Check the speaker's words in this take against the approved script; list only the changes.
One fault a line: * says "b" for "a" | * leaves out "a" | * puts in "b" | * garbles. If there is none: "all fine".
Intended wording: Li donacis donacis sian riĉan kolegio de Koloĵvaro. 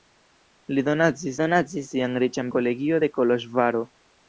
all fine